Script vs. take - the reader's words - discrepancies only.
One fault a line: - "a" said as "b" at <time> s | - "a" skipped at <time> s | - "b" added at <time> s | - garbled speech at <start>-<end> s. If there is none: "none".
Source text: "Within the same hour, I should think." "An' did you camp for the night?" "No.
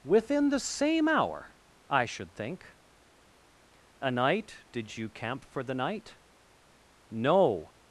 - "An" said as "A night" at 4.0 s